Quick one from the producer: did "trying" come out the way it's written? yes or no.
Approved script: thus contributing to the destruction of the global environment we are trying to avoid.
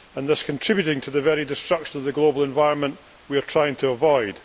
yes